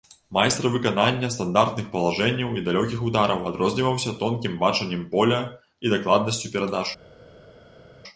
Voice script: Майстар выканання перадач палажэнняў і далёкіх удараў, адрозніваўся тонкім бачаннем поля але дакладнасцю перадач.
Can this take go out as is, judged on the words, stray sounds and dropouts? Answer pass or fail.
fail